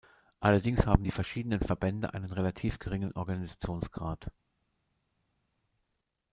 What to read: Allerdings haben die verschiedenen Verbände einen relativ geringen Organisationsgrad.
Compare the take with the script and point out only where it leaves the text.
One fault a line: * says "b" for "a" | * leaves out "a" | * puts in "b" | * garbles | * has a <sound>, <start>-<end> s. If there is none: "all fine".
all fine